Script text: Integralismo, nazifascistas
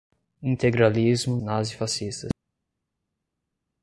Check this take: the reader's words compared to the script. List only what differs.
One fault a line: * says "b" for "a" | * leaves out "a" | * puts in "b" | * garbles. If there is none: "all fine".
all fine